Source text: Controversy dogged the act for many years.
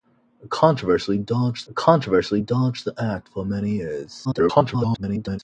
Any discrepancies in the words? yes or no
yes